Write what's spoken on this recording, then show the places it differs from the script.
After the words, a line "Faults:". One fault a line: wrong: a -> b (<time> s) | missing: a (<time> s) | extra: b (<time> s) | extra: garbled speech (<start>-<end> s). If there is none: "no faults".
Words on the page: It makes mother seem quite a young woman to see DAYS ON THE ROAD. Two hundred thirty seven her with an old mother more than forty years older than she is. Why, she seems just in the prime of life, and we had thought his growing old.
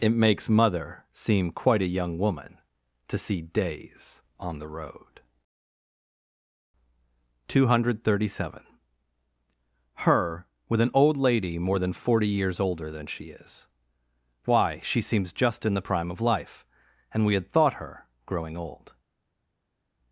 It makes mother seem quite a young woman to see DAYS ON THE ROAD. Two hundred thirty seven her with an old lady more than forty years older than she is. Why, she seems just in the prime of life, and we had thought her growing old.
Faults:
wrong: mother -> lady (11.2 s)
wrong: his -> her (17.7 s)